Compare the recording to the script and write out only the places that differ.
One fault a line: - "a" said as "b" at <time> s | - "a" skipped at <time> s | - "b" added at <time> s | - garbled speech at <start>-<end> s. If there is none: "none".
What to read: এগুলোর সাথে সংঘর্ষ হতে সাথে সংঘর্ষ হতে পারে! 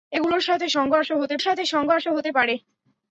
none